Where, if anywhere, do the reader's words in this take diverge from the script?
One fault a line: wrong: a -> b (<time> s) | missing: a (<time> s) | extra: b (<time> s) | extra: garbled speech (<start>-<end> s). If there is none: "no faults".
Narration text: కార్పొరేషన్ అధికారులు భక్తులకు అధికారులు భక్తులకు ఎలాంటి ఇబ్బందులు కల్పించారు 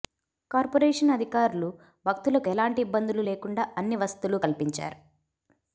wrong: అధికారులు భక్తులకు ఎలాంటి ఇబ్బందులు -> ఎలాంటి ఇబ్బందులు లేకుండా అన్ని వసతులు (2.5 s)